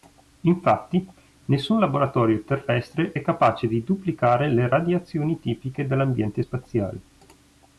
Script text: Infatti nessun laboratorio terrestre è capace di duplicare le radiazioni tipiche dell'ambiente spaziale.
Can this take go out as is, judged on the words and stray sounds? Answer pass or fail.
pass